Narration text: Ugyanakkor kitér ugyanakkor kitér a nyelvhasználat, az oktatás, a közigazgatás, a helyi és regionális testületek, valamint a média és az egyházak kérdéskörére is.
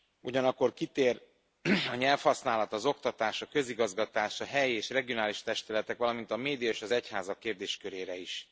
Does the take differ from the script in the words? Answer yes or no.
yes